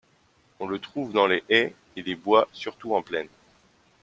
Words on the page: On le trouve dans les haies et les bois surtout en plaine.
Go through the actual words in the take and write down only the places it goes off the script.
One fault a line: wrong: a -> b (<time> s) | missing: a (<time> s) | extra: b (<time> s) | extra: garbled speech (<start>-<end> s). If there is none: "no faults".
no faults